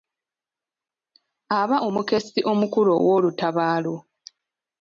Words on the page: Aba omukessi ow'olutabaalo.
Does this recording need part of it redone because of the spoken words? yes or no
yes